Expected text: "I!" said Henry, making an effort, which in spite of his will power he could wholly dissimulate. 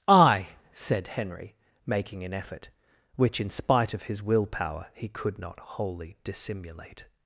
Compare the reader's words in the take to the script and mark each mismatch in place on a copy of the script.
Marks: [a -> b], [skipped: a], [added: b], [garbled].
"I!" said Henry, making an effort, which in spite of his will power he could [added: not] wholly dissimulate.